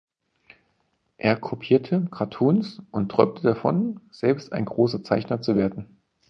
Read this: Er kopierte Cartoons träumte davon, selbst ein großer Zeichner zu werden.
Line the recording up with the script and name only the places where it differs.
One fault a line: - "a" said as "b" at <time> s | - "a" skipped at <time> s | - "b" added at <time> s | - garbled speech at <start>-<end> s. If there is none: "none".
- "und" added at 2.9 s